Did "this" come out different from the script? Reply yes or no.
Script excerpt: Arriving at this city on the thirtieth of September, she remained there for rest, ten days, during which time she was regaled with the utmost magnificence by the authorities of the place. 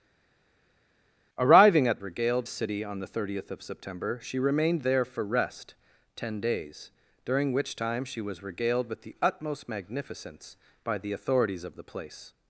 yes